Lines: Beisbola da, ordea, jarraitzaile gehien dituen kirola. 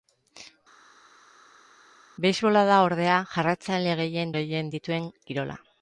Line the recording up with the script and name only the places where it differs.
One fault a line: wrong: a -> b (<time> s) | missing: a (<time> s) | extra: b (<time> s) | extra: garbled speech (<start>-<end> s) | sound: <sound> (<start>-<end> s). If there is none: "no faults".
extra: gehien (4.4 s)